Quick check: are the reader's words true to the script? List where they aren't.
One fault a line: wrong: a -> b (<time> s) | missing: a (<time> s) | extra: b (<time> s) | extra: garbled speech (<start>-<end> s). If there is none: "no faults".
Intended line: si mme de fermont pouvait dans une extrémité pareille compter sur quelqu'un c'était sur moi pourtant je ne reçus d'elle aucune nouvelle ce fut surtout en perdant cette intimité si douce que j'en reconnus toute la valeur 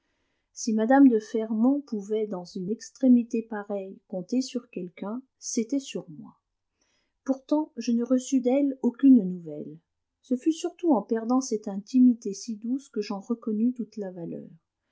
no faults